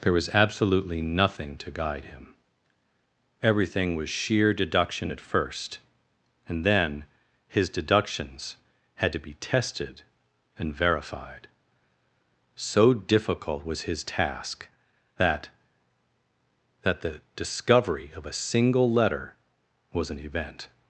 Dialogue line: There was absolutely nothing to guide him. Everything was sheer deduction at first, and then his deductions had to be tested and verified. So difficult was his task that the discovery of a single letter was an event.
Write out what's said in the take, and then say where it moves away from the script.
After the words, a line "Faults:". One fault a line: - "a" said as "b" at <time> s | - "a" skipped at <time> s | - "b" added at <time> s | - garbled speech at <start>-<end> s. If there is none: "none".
There was absolutely nothing to guide him. Everything was sheer deduction at first, and then his deductions had to be tested and verified. So difficult was his task that that the discovery of a single letter was an event.
Faults:
- "that" added at 16.8 s